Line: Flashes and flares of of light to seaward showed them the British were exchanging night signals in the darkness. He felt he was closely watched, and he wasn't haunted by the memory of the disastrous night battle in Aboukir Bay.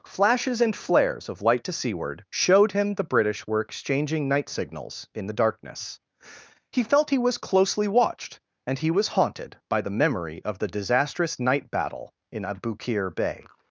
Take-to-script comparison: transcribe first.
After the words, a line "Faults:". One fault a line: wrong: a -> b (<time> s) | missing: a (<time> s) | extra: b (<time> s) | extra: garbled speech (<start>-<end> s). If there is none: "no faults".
Flashes and flares of light to seaward showed him the British were exchanging night signals in the darkness. He felt he was closely watched, and he was haunted by the memory of the disastrous night battle in Aboukir Bay.
Faults:
missing: of (1.4 s)
wrong: them -> him (2.7 s)
wrong: wasn't -> was (8.9 s)